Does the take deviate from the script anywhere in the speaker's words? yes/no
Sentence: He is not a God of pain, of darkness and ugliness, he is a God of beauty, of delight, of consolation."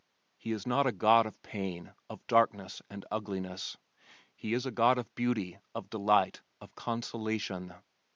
no